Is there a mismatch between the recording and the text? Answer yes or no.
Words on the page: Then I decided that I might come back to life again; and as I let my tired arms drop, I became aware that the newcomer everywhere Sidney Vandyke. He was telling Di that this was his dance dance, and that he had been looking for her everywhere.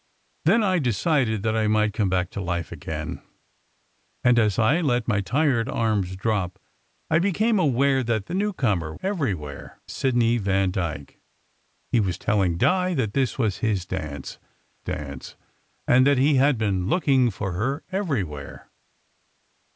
no